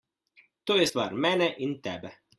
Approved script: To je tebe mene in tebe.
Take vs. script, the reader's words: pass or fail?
fail